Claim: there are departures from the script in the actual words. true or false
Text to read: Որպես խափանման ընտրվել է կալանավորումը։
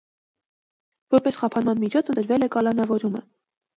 true